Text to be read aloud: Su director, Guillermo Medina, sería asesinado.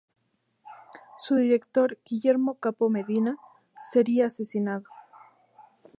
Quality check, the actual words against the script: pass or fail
fail